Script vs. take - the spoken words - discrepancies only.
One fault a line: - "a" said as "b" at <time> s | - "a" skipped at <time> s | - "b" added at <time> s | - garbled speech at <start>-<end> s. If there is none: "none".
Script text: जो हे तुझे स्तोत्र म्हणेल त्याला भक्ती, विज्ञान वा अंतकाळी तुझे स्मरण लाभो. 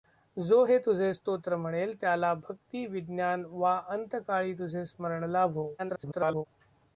- garbled speech at 5.8-6.5 s